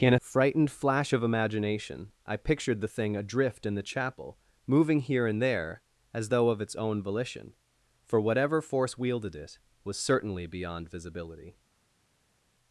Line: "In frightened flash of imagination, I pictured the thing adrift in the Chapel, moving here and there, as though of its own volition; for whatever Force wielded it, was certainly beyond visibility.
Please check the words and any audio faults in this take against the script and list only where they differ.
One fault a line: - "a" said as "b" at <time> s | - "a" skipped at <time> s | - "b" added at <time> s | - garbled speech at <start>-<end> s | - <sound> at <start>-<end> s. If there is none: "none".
none